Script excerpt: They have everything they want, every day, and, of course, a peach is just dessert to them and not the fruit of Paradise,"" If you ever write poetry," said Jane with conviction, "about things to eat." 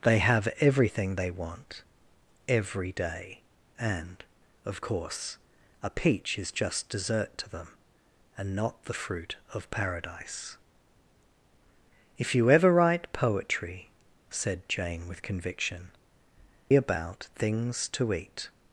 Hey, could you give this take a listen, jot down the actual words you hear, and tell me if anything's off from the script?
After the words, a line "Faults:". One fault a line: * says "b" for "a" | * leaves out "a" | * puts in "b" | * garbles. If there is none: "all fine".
They have everything they want, every day, and, of course, a peach is just dessert to them and not the fruit of Paradise,"" If you ever write poetry," said Jane with conviction, "about things to eat."
Faults:
all fine